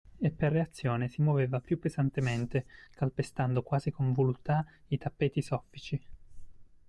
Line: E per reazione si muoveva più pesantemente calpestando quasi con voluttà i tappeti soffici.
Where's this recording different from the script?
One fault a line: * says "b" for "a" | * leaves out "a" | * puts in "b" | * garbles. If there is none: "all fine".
all fine